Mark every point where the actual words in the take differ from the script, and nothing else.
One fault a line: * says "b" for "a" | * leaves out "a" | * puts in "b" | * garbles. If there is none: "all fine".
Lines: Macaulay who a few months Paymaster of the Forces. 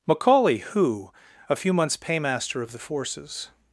all fine